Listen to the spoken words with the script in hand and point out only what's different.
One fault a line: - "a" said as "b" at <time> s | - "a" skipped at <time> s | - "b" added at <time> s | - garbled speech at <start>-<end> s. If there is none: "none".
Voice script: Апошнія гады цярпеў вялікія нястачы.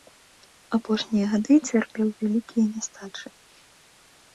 none